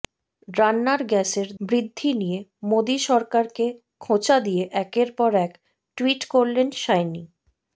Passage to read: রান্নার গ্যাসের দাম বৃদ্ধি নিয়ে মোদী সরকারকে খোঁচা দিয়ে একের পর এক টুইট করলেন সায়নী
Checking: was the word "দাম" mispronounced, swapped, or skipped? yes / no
yes